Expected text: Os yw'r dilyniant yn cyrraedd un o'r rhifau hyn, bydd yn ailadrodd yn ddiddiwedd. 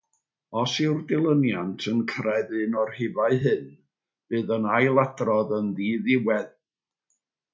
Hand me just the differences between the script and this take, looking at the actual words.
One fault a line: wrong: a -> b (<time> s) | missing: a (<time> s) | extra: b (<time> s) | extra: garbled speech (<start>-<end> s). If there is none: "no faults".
no faults